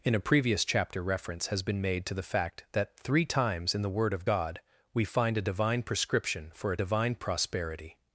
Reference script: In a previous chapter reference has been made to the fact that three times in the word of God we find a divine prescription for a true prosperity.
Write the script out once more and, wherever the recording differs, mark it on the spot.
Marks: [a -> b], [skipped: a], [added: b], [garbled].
In a previous chapter reference has been made to the fact that three times in the word of God we find a divine prescription for a [true -> divine] prosperity.